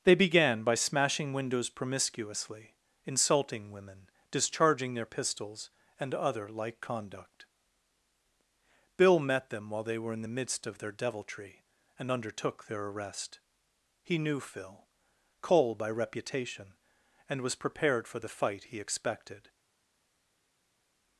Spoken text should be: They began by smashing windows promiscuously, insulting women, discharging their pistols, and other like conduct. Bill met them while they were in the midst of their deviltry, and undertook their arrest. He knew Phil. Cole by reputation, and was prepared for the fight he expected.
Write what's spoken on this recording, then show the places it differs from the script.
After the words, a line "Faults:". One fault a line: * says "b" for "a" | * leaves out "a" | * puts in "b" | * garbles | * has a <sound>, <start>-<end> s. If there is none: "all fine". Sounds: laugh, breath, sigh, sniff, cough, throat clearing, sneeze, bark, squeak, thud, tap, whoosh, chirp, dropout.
They began by smashing windows promiscuously, insulting women, discharging their pistols, and other like conduct. Bill met them while they were in the midst of their deviltry, and undertook their arrest. He knew Phil. Cole by reputation, and was prepared for the fight he expected.
Faults:
all fine